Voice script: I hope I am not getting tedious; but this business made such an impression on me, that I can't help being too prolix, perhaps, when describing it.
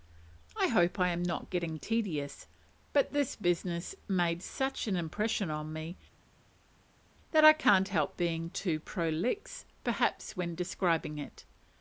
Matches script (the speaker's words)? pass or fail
pass